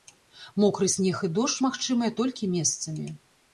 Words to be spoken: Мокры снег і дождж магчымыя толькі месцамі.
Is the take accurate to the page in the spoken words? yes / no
yes